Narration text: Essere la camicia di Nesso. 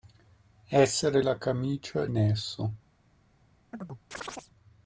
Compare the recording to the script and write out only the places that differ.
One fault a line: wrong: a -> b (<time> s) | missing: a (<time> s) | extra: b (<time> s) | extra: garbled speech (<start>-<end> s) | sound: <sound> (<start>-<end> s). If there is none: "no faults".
missing: di (2.1 s)
sound: chirp (3.7-4.5 s)